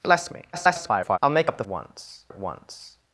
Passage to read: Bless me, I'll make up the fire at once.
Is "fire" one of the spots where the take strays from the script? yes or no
yes